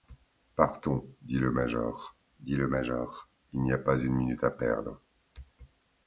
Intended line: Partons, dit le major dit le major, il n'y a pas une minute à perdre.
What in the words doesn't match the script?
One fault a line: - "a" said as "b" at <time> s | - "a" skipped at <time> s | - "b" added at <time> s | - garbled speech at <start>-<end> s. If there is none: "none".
none